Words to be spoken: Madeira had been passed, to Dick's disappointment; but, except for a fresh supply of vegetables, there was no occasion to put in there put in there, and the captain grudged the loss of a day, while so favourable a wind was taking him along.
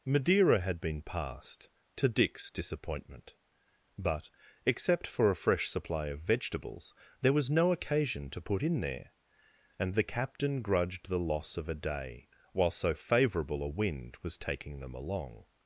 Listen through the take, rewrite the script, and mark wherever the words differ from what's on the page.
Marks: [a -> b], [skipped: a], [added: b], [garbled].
Madeira had been passed, to Dick's disappointment; but, except for a fresh supply of vegetables, there was no occasion to put in there [skipped: put in there,] and the captain grudged the loss of a day, while so favourable a wind was taking [him -> them] along.